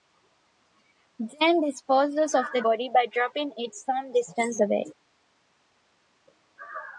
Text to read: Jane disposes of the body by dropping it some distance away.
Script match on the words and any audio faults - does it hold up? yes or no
yes